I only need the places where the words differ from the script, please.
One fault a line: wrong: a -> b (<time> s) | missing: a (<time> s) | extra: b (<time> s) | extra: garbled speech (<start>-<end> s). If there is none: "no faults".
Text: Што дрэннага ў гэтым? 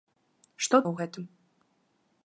missing: дрэннага (0.8 s)